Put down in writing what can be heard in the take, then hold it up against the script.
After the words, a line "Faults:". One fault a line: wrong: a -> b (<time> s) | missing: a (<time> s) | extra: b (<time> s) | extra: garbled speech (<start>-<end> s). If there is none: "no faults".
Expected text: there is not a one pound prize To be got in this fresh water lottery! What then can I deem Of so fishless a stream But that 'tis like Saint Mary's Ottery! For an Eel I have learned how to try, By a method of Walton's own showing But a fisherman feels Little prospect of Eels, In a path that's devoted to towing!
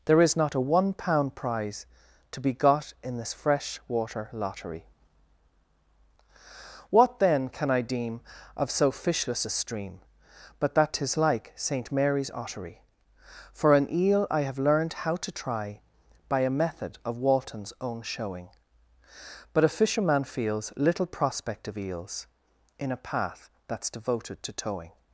there is not a one pound prize To be got in this fresh water lottery! What then can I deem Of so fishless a stream But that 'tis like Saint Mary's Ottery! For an Eel I have learned how to try, By a method of Walton's own showing But a fisherman feels Little prospect of Eels, In a path that's devoted to towing!
Faults:
no faults